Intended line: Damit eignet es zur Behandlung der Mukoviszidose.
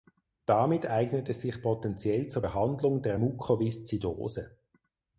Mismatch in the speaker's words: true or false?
true